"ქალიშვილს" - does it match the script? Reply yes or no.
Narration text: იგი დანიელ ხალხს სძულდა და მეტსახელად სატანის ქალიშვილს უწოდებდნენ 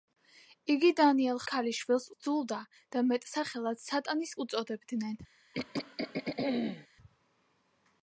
no